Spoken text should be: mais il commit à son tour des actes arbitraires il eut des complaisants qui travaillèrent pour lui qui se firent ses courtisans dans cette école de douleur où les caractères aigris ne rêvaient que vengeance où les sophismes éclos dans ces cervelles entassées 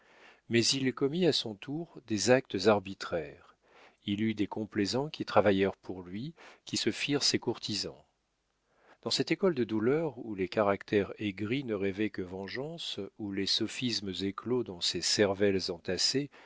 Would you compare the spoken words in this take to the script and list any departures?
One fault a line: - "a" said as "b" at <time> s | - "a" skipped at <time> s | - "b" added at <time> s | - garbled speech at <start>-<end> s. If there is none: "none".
none